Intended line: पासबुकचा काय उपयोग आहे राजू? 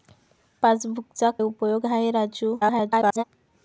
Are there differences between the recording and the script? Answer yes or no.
yes